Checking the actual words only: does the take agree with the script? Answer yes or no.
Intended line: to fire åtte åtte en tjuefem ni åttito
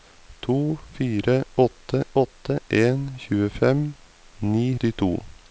yes